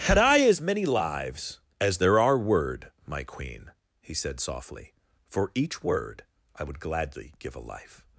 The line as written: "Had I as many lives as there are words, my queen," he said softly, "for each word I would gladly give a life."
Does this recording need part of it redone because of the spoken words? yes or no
yes